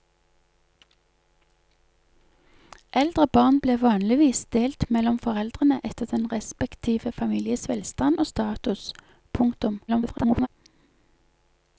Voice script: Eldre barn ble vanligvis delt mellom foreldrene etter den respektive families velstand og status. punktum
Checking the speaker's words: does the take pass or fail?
fail